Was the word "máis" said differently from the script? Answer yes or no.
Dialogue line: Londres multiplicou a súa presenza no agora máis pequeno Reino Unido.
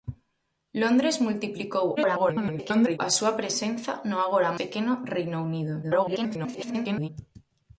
yes